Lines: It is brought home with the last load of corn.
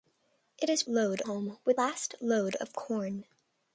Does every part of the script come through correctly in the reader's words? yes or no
no